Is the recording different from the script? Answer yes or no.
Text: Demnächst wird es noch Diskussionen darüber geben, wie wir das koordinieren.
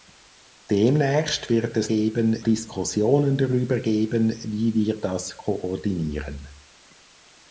yes